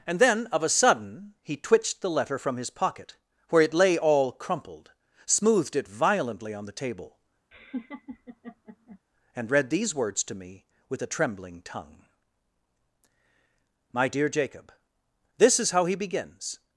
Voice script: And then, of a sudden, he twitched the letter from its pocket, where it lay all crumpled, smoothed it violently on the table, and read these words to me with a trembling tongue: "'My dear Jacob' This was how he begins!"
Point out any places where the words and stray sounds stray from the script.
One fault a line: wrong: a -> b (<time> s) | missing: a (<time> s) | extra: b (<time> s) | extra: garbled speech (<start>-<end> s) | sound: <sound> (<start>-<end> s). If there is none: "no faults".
wrong: its -> his (2.6 s)
sound: laugh (7.5-9.0 s)
wrong: was -> is (15.6 s)